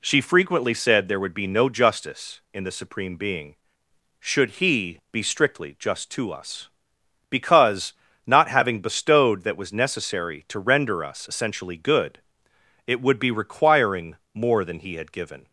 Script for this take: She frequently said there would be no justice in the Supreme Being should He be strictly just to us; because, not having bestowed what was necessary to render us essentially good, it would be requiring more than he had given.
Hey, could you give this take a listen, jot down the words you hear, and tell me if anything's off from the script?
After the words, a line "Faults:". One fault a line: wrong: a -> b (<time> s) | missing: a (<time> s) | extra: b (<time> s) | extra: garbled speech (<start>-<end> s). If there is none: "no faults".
She frequently said there would be no justice in the Supreme Being should He be strictly just to us; because, not having bestowed that was necessary to render us essentially good, it would be requiring more than he had given.
Faults:
wrong: what -> that (9.4 s)